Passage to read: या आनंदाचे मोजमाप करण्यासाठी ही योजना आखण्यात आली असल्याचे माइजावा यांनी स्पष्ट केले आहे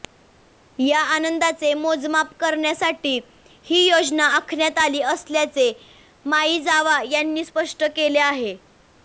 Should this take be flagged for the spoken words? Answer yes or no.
no